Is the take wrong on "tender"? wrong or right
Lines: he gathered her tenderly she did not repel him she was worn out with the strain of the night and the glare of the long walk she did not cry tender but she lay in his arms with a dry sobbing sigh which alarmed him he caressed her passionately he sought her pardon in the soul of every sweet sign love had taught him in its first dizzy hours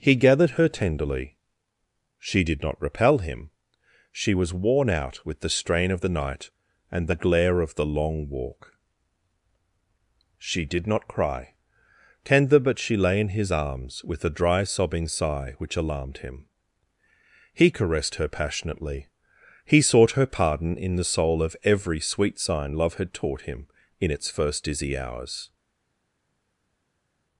right